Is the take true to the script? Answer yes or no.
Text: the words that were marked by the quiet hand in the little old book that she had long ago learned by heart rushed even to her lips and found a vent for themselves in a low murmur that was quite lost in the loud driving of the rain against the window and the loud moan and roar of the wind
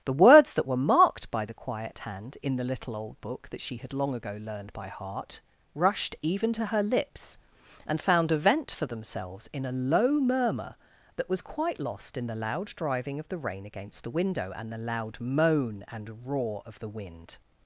yes